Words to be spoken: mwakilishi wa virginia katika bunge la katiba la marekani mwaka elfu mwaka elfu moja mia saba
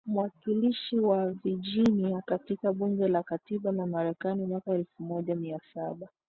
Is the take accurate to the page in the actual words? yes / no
no